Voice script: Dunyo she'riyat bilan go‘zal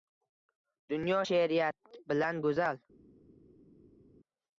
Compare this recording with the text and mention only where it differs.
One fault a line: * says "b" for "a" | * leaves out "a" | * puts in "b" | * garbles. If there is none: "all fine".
all fine